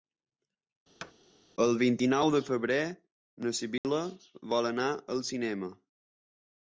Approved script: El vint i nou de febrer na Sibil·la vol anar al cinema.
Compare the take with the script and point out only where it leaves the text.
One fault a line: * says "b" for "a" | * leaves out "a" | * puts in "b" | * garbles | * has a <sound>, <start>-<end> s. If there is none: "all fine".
* has a thud, 1.0-1.1 s
* has a dropout, 3.8-3.8 s